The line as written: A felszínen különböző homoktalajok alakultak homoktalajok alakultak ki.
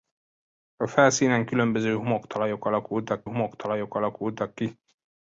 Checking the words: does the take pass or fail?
pass